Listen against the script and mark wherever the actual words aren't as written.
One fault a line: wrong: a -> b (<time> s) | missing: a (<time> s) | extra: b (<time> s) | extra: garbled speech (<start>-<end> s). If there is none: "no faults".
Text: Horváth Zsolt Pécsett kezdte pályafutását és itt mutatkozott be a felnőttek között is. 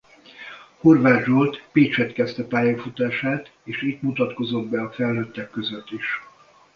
no faults